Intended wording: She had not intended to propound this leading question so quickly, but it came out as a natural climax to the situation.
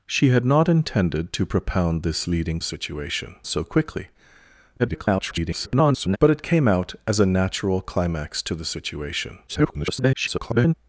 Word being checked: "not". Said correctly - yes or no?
yes